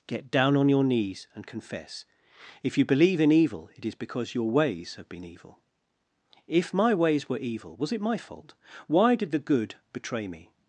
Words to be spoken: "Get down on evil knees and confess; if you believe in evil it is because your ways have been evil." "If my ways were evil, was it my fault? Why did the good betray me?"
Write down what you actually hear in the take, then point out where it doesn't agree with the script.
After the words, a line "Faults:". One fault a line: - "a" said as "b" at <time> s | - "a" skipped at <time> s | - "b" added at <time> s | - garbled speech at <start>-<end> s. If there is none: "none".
"Get down on your knees and confess; if you believe in evil it is because your ways have been evil." "If my ways were evil, was it my fault? Why did the good betray me?"
Faults:
- "evil" said as "your" at 0.7 s